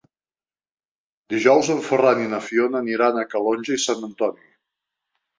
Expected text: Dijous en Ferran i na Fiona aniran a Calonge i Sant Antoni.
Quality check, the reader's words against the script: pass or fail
pass